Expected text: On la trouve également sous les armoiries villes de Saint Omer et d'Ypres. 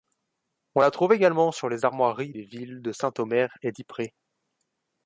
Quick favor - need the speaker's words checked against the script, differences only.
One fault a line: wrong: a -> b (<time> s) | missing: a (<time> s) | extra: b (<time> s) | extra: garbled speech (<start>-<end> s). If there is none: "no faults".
wrong: sous -> sur (1.5 s)
extra: des (2.3 s)